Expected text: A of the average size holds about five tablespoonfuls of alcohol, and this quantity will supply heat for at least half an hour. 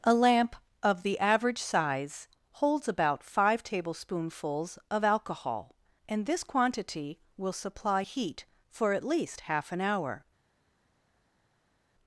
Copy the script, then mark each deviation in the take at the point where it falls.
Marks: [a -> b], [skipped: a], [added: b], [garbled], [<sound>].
A [added: lamp] of the average size holds about five tablespoonfuls of alcohol, and this quantity will supply heat for at least half an hour.